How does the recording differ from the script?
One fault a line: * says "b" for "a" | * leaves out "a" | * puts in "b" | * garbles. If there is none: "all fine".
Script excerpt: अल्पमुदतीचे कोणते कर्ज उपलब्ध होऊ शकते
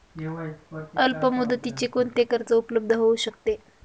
all fine